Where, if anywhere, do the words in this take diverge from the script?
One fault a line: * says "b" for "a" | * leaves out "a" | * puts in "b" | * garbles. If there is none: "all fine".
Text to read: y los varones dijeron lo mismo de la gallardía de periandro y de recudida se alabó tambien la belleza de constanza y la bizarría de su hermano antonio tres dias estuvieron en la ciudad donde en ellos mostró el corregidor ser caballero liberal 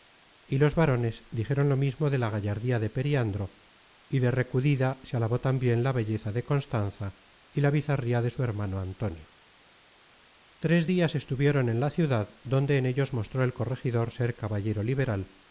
all fine